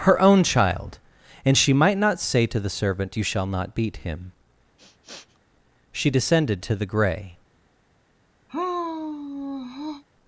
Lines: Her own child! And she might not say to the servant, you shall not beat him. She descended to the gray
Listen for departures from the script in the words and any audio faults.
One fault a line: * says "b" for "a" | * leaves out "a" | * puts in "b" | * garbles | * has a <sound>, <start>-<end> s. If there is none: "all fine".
* has a sniff, 4.8-5.4 s
* has a sigh, 8.5-10.0 s